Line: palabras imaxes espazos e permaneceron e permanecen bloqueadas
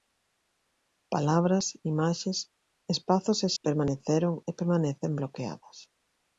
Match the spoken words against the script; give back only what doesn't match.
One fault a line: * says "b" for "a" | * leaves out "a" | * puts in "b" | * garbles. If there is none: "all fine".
all fine